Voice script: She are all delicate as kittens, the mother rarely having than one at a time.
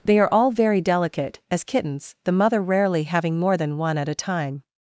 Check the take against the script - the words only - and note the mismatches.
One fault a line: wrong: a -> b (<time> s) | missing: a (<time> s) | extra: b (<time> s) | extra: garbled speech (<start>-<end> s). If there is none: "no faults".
wrong: She -> They (0.0 s)
extra: very (0.5 s)
extra: more (3.4 s)